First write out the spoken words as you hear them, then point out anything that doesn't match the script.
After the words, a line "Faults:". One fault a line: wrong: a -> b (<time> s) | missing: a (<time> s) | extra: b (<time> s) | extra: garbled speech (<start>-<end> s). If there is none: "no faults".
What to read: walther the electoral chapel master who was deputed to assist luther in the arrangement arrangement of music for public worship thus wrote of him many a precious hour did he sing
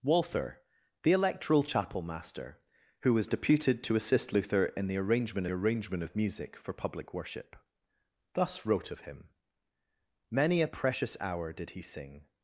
walther the electoral chapel master who was deputed to assist luther in the arrangement arrangement of music for public worship thus wrote of him many a precious hour did he sing
Faults:
no faults